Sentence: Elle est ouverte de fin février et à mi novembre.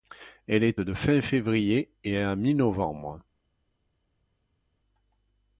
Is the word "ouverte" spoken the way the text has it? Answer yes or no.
no